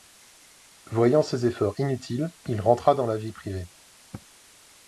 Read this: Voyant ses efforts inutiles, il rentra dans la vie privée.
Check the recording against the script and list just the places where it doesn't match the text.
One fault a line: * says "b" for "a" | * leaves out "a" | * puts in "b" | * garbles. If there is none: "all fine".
all fine